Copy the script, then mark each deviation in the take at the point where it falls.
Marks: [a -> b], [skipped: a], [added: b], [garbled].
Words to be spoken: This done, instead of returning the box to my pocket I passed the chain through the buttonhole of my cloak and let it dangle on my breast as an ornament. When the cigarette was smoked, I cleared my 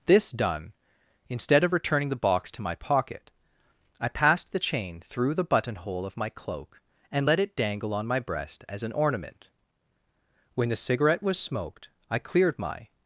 This done, instead of returning the box to my pocket I passed the chain through the buttonhole of my cloak and let it dangle on my breast as an ornament. When the cigarette was smoked, I cleared my